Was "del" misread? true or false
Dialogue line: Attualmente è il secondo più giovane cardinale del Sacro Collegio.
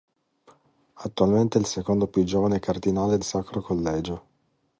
true